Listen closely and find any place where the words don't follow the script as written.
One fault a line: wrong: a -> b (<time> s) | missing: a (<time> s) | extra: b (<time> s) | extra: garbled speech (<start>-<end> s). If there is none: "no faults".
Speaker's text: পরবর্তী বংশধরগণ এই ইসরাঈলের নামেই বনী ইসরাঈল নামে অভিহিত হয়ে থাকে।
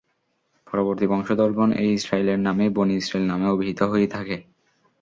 no faults